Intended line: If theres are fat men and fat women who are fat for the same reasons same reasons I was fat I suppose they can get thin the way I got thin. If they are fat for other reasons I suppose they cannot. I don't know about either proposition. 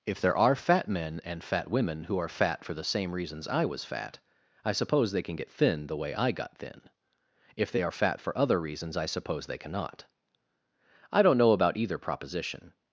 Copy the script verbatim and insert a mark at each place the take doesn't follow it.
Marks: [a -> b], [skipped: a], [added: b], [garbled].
If [theres -> there] are fat men and fat women who are fat for the same reasons [skipped: same reasons] I was fat I suppose they can get thin the way I got thin. If they are fat for other reasons I suppose they cannot. I don't know about either proposition.